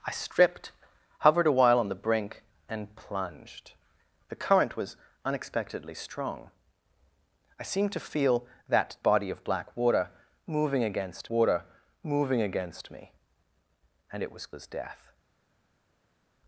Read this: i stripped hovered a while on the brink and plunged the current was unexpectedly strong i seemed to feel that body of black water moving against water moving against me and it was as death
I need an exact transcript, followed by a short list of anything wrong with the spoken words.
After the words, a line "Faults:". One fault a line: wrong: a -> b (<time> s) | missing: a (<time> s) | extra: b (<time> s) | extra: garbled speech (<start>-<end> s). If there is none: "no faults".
i stripped hovered a while on the brink and plunged the current was unexpectedly strong i seemed to feel that body of black water moving against water moving against me and it was as death
Faults:
no faults